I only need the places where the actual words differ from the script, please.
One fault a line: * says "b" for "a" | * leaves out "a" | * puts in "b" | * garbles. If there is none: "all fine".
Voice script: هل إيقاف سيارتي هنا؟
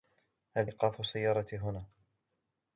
all fine